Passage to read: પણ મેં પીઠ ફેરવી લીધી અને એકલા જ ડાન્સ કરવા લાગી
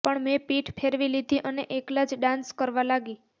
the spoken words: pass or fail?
pass